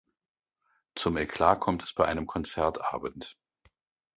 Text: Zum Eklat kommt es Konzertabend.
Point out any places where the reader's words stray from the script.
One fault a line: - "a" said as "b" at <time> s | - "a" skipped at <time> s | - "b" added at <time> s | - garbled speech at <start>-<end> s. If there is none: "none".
- "bei einem" added at 1.9 s